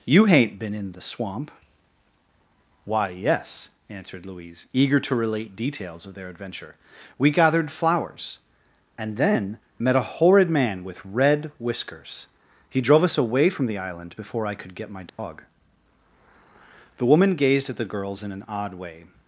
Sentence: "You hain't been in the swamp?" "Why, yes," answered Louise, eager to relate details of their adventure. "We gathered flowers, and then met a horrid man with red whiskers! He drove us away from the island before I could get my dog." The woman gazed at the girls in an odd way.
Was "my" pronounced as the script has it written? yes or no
yes